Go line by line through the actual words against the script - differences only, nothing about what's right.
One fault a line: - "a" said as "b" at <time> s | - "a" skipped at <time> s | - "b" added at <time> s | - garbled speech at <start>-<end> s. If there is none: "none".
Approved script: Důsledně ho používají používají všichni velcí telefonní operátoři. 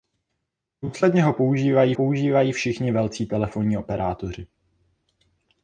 none